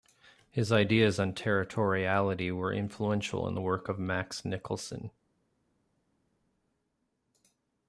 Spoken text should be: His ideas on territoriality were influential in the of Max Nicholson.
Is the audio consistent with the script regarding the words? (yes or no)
no